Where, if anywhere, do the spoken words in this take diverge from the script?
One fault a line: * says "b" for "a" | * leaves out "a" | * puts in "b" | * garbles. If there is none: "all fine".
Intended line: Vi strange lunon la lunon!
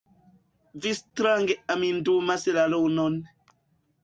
* says "amindumas" for "lunon"